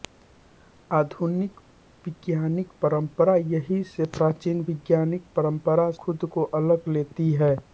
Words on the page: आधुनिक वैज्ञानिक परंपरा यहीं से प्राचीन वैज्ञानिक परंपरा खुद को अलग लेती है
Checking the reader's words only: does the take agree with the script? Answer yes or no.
yes